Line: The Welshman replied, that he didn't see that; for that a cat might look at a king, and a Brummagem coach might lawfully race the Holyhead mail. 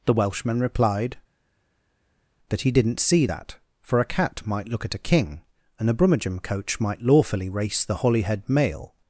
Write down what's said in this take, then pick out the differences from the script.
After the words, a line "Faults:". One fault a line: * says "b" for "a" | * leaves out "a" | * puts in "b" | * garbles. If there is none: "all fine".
The Welshman replied, that he didn't see that; for a cat might look at a king, and a Brummagem coach might lawfully race the Holyhead mail.
Faults:
* leaves out "that"